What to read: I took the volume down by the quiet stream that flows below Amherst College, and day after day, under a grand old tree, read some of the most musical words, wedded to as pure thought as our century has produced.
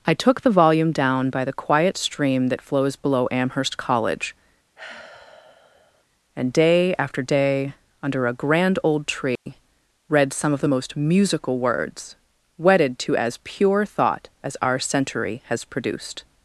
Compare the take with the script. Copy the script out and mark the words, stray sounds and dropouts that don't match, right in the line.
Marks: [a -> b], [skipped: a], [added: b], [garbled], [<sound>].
I took the volume down by the quiet stream that flows below Amherst College, [sigh] and day after day, under a grand old tree, [dropout] read some of the most musical words, wedded to as pure thought as our century has produced.